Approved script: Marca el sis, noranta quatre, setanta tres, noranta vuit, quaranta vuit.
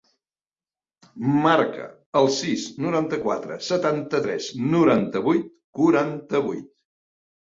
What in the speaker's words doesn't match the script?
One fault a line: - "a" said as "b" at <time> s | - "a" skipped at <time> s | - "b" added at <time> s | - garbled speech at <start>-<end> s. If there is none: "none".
none